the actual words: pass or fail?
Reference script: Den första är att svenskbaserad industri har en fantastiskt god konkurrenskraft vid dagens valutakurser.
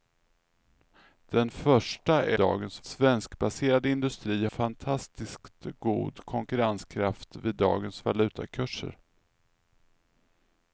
fail